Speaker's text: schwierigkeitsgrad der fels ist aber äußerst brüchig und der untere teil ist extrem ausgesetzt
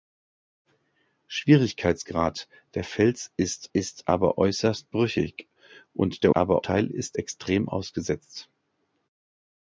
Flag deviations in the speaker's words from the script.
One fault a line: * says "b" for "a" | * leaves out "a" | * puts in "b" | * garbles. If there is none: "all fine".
* puts in "ist"
* says "aber" for "untere"